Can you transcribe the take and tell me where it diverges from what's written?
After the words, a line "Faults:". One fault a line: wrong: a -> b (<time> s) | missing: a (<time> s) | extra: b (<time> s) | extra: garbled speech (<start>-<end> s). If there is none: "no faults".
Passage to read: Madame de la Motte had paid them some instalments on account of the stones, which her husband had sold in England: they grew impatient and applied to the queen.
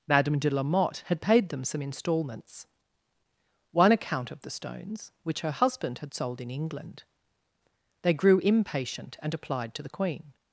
Madame de la Motte had paid them some instalments one account of the stones, which her husband had sold in England: they grew impatient and applied to the queen.
Faults:
wrong: on -> one (3.7 s)